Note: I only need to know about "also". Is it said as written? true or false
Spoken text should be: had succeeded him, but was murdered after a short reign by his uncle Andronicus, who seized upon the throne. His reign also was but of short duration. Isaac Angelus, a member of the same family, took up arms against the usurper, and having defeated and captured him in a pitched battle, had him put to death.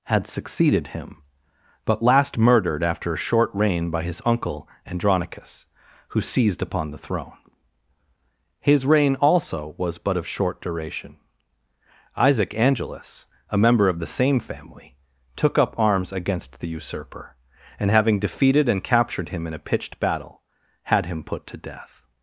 true